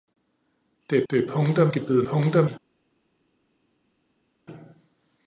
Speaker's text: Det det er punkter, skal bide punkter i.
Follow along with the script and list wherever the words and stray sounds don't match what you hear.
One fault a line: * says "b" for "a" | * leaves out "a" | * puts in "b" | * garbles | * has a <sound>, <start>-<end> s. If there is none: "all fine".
all fine